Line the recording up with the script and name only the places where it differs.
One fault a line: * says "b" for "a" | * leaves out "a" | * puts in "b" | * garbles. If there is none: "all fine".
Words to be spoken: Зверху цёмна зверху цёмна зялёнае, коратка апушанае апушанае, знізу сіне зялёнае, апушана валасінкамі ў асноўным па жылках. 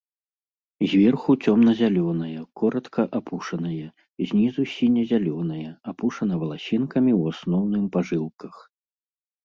* leaves out "зверху цёмна"
* leaves out "апушанае"